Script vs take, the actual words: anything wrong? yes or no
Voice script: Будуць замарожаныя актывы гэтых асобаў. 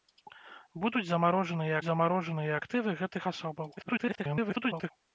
yes